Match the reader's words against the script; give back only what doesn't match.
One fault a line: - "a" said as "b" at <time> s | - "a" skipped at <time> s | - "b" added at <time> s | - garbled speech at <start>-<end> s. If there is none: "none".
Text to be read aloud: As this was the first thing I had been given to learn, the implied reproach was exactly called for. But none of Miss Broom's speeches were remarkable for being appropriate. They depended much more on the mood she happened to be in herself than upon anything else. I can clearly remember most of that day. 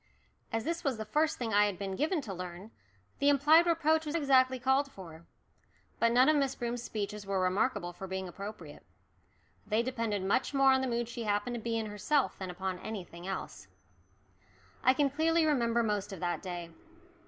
none